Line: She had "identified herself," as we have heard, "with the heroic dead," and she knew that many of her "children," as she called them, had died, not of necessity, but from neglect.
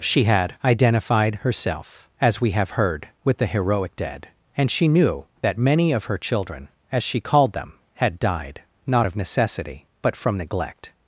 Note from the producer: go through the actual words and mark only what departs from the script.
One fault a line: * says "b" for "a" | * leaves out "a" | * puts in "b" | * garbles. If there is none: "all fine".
all fine